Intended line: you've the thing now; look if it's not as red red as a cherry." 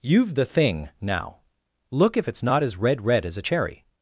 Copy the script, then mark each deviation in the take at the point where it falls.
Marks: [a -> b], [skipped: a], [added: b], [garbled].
you've the thing now; look if it's not as red red as a cherry."